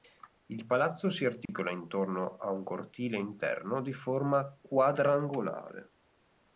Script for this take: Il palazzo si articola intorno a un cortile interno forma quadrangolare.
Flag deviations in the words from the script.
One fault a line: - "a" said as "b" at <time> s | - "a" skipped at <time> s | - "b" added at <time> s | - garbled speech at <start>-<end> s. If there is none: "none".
- "di" added at 3.8 s